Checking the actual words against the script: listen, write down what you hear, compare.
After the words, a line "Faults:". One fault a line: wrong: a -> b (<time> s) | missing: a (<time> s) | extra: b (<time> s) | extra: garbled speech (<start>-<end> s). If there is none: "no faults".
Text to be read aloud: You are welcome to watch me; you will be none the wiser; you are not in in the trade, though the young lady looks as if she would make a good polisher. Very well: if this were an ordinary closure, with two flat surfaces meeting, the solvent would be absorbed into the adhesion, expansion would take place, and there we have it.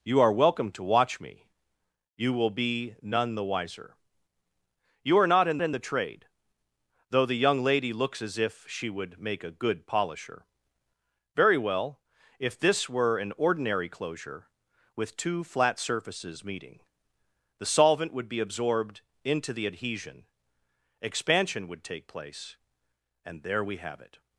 You are welcome to watch me; you will be none the wiser; you are not in in the trade, though the young lady looks as if she would make a good polisher. Very well: if this were an ordinary closure, with two flat surfaces meeting, the solvent would be absorbed into the adhesion, expansion would take place, and there we have it.
Faults:
no faults